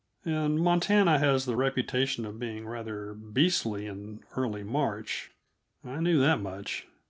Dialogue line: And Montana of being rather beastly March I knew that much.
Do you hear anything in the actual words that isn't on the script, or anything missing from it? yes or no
yes